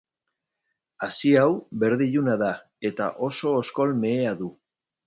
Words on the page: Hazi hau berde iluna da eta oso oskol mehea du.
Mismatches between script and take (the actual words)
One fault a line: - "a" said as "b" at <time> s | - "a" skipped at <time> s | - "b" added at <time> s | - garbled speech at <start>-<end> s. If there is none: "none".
none